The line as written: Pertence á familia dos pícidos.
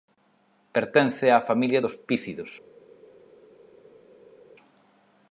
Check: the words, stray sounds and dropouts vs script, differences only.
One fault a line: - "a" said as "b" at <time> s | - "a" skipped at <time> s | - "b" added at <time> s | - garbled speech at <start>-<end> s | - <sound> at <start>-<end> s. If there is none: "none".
none